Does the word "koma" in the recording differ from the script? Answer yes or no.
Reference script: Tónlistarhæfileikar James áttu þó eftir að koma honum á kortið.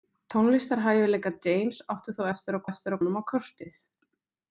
yes